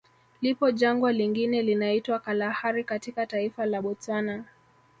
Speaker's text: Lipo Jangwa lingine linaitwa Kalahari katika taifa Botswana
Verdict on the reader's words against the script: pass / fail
fail